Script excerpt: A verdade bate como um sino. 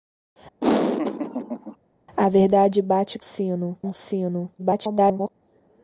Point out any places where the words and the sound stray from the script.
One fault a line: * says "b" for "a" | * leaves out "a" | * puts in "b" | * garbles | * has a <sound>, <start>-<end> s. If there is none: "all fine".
* has a laugh, 0.6-1.8 s
* says "sino" for "como"
* garbles